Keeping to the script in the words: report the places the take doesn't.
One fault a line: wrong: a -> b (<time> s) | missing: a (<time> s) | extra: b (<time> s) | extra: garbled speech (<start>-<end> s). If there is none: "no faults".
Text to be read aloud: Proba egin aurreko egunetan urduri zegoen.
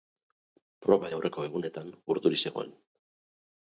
missing: egin (1.1 s)